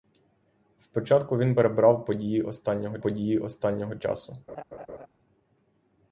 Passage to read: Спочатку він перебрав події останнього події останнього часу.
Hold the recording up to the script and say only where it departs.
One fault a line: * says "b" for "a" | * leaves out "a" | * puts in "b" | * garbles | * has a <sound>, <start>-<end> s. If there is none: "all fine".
* has a laugh, 4.5-5.1 s